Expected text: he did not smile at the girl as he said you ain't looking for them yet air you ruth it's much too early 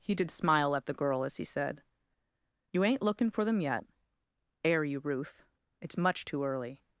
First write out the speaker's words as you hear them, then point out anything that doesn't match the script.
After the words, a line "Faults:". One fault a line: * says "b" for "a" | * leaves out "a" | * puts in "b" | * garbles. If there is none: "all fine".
he did smile at the girl as he said you ain't looking for them yet air you ruth it's much too early
Faults:
* leaves out "not"